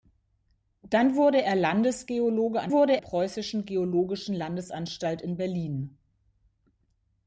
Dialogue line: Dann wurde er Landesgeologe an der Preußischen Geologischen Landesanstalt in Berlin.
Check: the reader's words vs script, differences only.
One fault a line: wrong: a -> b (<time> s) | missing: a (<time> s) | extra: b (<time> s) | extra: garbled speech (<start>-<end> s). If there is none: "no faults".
wrong: der -> wurde (2.7 s)